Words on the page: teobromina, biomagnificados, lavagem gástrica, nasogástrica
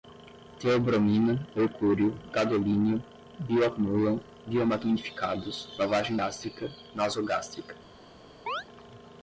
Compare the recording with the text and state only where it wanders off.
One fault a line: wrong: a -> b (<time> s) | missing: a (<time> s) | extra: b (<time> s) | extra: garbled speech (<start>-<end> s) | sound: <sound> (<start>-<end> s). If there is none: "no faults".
extra: mercúrio gadolínio bioacumulam (1.6 s)
sound: chirp (8.5-8.6 s)